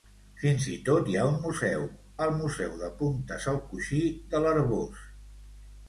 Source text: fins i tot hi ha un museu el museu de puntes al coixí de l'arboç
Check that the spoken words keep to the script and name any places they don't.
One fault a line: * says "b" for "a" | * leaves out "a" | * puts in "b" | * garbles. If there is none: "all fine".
all fine